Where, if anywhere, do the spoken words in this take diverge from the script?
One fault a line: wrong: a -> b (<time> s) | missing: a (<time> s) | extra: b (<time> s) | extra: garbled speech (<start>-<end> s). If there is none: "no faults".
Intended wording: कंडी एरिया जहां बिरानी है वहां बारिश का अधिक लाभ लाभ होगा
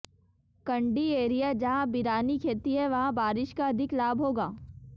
extra: खेती (2.4 s)
missing: लाभ (4.2 s)